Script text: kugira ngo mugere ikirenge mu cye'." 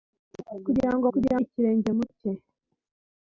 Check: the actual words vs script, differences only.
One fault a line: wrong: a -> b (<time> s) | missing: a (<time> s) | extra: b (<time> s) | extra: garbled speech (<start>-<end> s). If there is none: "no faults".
wrong: mugere -> kugira (1.1 s)